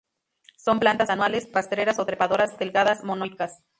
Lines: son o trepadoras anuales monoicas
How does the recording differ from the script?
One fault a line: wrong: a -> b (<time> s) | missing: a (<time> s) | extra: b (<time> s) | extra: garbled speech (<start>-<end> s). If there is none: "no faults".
extra: plantas anuales rastreras (0.8 s)
wrong: anuales -> delgadas (2.6 s)